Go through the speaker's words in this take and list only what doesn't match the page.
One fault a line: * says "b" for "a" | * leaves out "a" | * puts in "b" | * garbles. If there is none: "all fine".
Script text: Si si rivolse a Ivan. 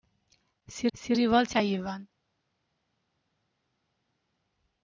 all fine